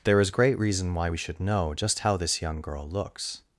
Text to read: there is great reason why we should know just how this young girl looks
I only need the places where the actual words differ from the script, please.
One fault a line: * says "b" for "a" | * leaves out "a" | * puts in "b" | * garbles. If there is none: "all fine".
all fine